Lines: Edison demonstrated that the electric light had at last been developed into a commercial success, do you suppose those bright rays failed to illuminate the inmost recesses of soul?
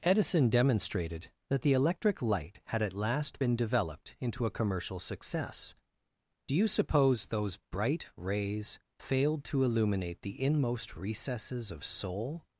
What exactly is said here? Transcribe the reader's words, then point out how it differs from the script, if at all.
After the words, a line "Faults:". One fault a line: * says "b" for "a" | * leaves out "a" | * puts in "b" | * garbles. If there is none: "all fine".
Edison demonstrated that the electric light had at last been developed into a commercial success, do you suppose those bright rays failed to illuminate the inmost recesses of soul?
Faults:
all fine